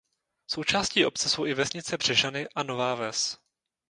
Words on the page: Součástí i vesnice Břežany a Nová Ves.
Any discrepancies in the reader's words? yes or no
yes